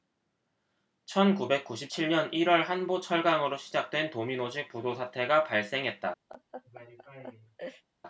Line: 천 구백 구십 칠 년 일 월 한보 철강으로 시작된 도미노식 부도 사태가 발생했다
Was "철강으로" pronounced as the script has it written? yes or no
yes